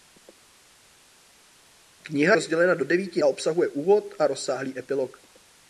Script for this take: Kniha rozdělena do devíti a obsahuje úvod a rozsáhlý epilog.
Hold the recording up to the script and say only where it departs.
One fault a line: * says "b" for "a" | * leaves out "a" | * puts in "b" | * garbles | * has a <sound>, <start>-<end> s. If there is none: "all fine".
all fine